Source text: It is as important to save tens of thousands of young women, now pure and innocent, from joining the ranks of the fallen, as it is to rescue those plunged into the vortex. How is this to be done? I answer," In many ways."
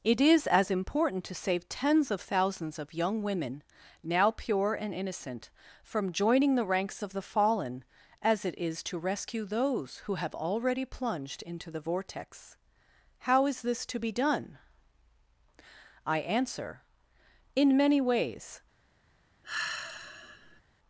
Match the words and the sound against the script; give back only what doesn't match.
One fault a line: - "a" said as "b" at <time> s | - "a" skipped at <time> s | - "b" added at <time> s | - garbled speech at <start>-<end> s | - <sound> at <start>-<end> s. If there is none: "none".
- "who have already" added at 10.0 s
- sigh at 19.4-20.6 s